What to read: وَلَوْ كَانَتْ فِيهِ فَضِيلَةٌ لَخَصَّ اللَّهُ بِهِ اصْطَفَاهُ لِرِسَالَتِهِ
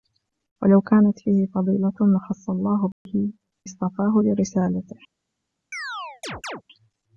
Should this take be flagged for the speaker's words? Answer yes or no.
no